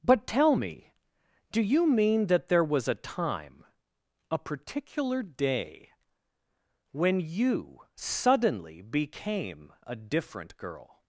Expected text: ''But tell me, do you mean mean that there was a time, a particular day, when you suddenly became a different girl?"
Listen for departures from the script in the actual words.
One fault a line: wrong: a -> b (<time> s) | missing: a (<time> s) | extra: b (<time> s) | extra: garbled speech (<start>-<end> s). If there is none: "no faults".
missing: mean (2.3 s)